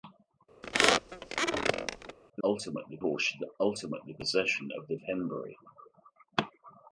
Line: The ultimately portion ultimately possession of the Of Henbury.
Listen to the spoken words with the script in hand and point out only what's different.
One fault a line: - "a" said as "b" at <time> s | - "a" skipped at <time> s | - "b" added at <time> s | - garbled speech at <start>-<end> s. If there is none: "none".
none